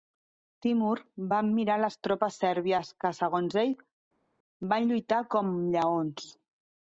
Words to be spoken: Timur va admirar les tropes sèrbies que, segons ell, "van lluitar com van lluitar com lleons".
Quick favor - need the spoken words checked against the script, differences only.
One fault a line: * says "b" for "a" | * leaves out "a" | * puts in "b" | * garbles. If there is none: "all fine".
* leaves out "van lluitar com"